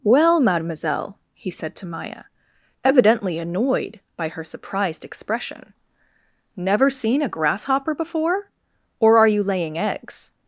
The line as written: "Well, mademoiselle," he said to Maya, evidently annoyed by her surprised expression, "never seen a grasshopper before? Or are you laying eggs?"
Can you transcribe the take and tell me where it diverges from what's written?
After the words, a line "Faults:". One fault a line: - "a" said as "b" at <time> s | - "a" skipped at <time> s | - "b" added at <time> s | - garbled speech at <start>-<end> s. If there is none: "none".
"Well, mademoiselle," he said to Maya, evidently annoyed by her surprised expression, "never seen a grasshopper before? Or are you laying eggs?"
Faults:
none